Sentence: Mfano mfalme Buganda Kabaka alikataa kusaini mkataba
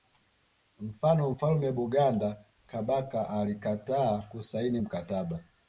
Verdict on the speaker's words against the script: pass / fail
pass